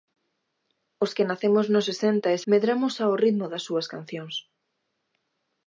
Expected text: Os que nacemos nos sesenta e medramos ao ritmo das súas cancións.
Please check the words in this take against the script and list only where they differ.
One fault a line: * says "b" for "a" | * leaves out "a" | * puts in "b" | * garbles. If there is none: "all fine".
all fine